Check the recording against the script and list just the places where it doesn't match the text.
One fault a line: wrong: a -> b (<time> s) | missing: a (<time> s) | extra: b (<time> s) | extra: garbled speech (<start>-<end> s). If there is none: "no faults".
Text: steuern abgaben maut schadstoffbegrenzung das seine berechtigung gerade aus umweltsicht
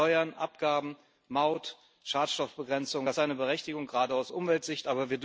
no faults